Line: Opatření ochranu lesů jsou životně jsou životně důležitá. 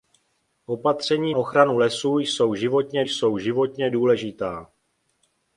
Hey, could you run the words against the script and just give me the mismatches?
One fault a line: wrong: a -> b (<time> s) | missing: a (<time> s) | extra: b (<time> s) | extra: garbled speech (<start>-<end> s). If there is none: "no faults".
no faults